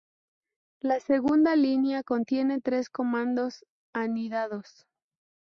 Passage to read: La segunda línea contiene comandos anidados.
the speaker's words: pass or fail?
fail